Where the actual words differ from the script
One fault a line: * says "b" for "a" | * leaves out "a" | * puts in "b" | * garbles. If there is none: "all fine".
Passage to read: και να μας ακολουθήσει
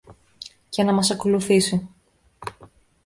all fine